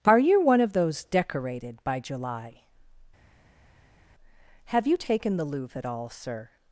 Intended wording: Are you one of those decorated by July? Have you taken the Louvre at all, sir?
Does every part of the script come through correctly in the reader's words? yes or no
yes